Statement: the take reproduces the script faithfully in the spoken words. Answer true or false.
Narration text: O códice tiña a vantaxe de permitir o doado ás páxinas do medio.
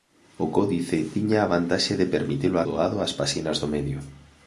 true